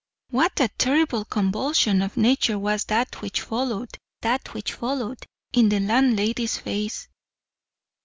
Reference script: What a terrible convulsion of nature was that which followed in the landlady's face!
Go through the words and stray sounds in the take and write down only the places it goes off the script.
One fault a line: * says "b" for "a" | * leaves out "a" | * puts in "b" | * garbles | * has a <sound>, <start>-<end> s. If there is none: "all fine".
* puts in "that which followed"